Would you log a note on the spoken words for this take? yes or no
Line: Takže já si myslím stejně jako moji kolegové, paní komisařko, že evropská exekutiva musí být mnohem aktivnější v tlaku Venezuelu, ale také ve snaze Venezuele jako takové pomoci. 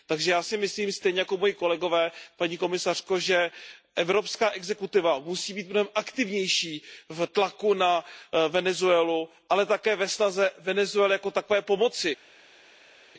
yes